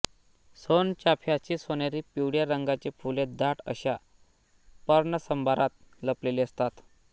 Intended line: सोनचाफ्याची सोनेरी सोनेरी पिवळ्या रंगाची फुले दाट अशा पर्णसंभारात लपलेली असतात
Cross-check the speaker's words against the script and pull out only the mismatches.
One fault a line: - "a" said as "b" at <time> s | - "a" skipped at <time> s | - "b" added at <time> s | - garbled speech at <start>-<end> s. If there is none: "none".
- "सोनेरी" skipped at 2.0 s